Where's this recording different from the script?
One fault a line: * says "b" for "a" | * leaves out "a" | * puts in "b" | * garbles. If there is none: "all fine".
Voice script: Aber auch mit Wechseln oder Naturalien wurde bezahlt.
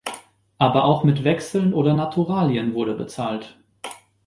all fine